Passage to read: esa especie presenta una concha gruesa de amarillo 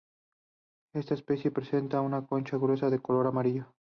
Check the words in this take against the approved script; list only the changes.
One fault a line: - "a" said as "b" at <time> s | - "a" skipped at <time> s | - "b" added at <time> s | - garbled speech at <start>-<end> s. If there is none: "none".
- "esa" said as "esta" at 0.9 s
- "color" added at 3.0 s